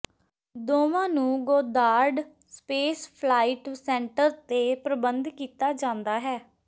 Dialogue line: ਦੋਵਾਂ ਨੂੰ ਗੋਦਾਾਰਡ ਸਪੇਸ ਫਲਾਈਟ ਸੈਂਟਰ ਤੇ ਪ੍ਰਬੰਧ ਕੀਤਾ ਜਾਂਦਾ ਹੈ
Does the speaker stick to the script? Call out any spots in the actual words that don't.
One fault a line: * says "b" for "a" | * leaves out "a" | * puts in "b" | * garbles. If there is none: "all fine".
all fine